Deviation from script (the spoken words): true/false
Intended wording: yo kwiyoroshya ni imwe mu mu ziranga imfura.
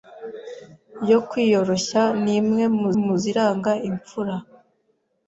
false